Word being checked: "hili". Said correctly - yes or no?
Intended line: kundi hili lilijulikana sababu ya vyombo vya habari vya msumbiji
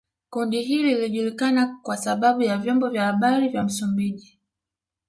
yes